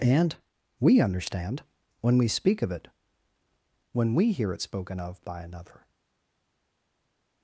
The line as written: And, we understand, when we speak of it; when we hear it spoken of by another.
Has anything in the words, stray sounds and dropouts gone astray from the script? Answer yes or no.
no